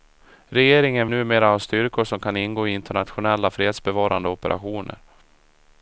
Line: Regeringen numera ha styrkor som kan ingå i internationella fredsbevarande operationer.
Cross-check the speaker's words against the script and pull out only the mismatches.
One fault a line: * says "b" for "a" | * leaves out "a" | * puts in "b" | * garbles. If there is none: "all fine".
all fine